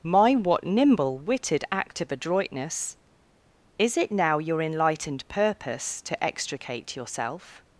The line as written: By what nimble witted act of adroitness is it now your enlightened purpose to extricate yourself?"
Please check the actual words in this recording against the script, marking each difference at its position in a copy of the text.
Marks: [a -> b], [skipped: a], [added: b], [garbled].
[By -> My] what nimble witted act of adroitness is it now your enlightened purpose to extricate yourself?"